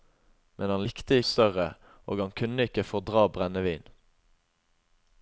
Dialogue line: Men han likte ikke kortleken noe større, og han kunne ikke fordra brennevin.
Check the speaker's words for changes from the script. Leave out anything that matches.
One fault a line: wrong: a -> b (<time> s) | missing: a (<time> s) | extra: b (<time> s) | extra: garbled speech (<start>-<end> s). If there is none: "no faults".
missing: ikke kortleken noe (1.2 s)